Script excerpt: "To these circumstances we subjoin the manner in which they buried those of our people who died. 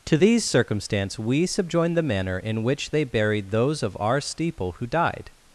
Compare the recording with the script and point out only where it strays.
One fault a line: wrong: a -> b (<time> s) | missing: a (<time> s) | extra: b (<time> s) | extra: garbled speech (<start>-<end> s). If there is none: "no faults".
wrong: circumstances -> circumstance (0.4 s)
wrong: people -> steeple (4.2 s)